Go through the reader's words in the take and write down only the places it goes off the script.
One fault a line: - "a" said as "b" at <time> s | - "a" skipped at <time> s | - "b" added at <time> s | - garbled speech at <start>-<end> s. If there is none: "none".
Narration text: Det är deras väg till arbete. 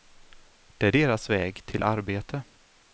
none